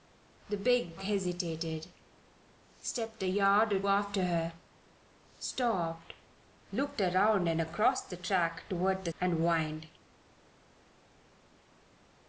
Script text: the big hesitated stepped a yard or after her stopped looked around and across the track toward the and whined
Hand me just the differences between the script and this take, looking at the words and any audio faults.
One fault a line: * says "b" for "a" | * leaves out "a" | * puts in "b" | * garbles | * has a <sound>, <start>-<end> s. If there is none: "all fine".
all fine